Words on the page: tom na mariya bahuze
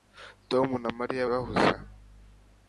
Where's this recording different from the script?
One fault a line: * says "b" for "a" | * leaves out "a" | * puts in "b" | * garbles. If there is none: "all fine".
all fine